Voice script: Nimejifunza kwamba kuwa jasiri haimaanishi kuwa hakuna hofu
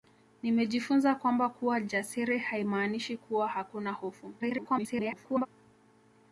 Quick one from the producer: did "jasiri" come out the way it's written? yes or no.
yes